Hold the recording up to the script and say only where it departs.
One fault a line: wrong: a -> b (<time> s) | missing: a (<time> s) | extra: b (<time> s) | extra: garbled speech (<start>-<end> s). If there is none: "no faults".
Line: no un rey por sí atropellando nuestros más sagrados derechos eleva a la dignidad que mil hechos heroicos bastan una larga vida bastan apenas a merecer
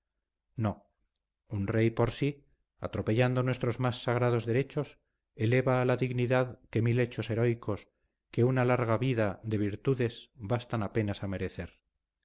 wrong: bastan -> que (8.3 s)
extra: de virtudes (9.4 s)